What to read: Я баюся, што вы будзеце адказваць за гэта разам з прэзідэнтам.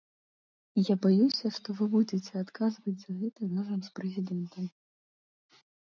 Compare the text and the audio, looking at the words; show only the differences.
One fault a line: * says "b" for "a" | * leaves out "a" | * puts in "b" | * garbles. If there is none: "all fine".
all fine